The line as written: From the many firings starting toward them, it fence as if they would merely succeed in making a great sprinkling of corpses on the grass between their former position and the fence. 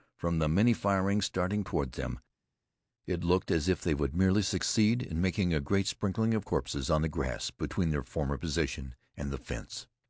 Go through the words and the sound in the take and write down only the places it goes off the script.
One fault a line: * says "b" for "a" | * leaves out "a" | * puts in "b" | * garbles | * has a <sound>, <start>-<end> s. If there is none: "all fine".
* says "looked" for "fence"